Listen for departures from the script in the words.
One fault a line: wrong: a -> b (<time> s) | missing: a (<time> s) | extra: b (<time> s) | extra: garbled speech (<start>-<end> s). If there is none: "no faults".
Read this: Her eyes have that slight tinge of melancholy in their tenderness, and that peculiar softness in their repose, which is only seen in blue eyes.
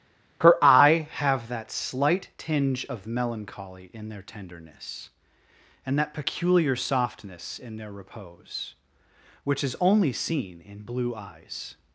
wrong: eyes -> eye (0.6 s)